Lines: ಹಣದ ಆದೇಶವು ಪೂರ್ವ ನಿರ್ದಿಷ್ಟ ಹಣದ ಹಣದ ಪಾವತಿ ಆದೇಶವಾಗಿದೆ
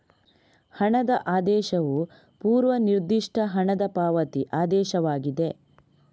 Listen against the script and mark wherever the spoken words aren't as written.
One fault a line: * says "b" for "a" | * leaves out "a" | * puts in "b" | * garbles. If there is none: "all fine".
* leaves out "ಹಣದ"